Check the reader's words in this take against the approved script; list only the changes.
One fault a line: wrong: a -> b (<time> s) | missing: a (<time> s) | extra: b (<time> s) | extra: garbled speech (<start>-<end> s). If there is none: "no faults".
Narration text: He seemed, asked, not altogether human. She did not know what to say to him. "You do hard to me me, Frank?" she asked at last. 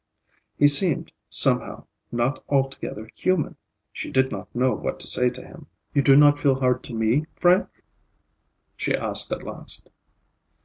wrong: asked -> somehow (1.3 s)
extra: not feel (6.2 s)
missing: me (7.3 s)